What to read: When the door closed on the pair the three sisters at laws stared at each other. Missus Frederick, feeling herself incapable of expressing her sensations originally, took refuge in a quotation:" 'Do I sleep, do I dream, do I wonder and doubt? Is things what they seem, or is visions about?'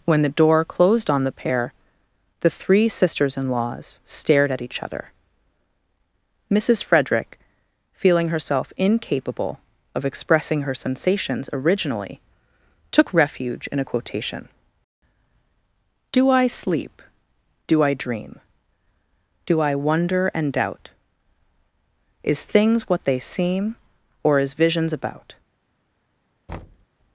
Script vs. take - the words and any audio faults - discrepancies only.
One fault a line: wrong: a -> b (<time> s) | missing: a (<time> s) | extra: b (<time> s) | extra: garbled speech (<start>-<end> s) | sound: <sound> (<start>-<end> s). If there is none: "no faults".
wrong: at -> in (3.4 s)
sound: thud (26.5-26.9 s)